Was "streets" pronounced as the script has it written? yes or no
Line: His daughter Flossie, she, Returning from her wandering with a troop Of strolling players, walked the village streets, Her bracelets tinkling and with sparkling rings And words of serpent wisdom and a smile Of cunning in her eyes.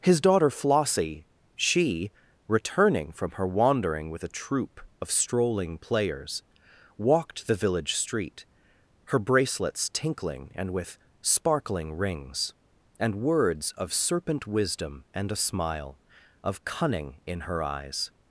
no